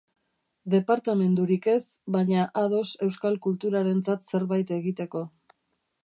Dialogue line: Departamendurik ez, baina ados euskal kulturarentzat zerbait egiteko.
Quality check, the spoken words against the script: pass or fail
pass